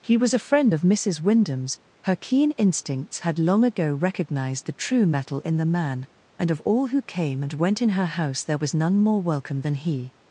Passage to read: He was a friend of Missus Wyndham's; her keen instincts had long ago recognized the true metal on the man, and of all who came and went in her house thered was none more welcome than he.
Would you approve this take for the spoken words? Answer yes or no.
no